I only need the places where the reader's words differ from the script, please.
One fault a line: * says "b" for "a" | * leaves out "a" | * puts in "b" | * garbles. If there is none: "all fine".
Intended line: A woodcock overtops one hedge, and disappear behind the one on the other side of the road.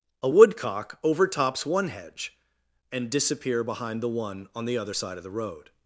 all fine